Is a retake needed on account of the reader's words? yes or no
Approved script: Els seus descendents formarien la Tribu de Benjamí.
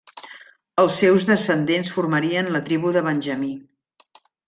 no